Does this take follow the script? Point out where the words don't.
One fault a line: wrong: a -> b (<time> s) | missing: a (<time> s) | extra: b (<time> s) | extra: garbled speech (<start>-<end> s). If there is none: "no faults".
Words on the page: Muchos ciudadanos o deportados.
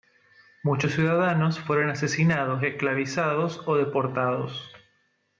extra: fueron asesinados esclavizados (1.6 s)